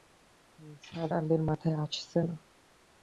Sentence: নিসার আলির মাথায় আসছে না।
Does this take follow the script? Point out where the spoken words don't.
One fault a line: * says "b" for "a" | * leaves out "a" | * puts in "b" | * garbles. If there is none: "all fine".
all fine